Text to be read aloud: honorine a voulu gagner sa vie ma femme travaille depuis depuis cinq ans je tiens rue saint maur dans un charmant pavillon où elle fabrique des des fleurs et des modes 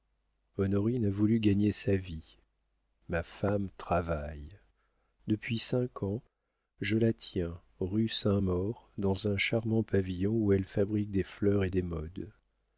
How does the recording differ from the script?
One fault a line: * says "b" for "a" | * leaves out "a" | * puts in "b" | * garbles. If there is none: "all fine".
* leaves out "depuis"
* puts in "la"
* leaves out "des"